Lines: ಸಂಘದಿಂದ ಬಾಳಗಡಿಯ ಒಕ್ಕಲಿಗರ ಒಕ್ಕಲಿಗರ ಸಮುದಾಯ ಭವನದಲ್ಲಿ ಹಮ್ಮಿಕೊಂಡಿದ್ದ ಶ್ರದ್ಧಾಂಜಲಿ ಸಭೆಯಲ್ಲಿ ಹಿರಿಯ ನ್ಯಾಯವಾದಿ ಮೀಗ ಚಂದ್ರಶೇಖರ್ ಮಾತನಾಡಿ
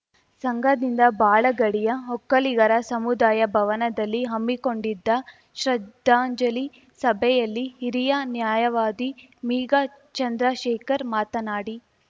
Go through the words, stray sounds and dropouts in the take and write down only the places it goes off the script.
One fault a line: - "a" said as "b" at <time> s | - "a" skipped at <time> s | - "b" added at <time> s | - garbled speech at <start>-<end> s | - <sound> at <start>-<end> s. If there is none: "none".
- "ಒಕ್ಕಲಿಗರ" skipped at 2.7 s